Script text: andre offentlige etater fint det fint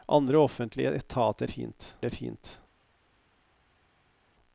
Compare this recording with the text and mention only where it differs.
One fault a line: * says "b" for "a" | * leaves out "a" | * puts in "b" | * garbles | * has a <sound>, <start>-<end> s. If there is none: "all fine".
all fine